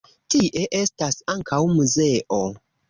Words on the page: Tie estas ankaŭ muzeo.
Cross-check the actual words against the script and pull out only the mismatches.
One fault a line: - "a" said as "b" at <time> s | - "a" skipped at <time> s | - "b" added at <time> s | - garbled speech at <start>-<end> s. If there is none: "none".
none